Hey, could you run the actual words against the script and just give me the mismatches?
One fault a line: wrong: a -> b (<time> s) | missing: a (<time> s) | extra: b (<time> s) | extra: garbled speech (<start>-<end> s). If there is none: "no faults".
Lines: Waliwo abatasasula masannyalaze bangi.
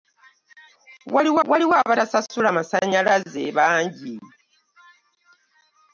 extra: waliwo (1.5 s)